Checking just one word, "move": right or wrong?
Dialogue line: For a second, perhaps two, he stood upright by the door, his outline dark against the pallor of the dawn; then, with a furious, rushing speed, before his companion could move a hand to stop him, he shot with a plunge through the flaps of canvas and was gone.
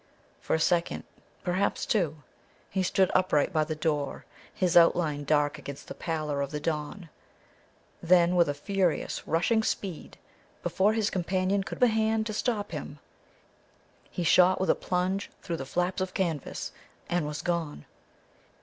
wrong